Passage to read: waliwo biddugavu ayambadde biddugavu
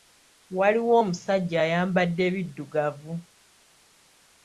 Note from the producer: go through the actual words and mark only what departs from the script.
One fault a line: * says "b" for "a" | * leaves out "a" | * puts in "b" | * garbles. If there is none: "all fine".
* says "omusajja" for "biddugavu"